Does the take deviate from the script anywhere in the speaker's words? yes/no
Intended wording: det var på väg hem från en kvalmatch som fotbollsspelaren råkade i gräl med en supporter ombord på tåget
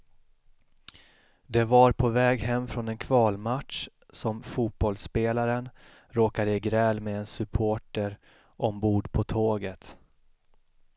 no